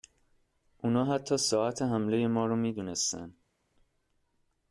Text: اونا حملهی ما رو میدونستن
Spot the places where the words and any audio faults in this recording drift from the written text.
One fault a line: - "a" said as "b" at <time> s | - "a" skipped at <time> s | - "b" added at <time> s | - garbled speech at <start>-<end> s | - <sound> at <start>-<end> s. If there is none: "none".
- "حتی ساعت" added at 1.1 s